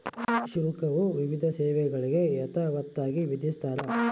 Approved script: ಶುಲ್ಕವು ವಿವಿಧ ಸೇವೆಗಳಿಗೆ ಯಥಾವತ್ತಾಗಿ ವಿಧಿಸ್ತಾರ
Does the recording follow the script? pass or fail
pass